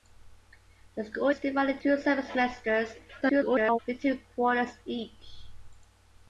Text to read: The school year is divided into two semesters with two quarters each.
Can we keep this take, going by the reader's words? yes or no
no